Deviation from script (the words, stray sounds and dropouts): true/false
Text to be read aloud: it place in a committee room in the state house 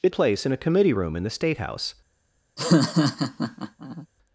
true